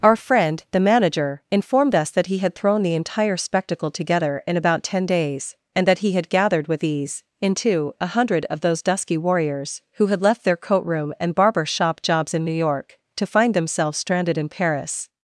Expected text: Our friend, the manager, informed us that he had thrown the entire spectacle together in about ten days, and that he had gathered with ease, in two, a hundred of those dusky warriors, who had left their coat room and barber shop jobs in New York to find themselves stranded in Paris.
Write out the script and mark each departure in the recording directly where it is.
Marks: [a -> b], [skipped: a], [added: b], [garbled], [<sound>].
Our friend, the manager, informed us that he had thrown the entire spectacle together in about ten days, and that he had gathered with ease, in two, a hundred of those dusky warriors, who had left their coat room and barber shop jobs in New York to find themselves stranded in Paris.